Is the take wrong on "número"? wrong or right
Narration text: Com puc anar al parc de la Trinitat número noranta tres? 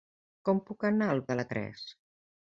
wrong